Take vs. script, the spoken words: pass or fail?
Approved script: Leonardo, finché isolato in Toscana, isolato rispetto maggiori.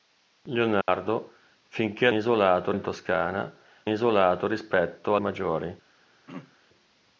pass